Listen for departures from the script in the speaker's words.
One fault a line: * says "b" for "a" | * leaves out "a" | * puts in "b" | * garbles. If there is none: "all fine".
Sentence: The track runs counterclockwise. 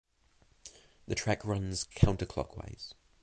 all fine